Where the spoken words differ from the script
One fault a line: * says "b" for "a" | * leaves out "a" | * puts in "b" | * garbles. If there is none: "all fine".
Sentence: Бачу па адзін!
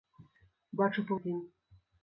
all fine